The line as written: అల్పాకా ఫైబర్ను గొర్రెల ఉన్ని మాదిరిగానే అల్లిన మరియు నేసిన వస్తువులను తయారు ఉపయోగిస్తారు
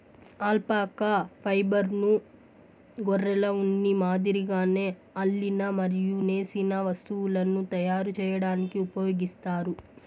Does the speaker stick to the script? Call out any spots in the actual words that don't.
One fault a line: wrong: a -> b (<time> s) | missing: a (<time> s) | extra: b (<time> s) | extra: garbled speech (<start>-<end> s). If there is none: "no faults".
extra: చేయడానికి (8.2 s)